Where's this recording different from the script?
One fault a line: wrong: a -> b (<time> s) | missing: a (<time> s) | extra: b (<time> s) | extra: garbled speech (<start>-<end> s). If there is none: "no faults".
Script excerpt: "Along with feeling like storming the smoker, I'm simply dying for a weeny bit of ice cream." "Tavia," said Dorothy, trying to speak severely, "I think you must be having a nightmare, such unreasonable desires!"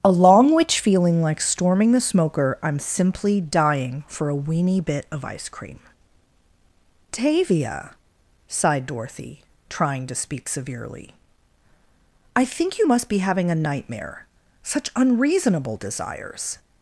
wrong: with -> which (0.6 s)
wrong: said -> sighed (8.5 s)